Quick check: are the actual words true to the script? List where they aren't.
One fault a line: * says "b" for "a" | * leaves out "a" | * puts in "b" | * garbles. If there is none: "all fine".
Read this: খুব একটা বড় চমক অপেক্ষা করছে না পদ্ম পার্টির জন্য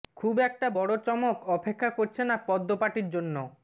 all fine